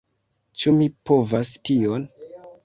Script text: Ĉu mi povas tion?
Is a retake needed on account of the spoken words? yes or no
no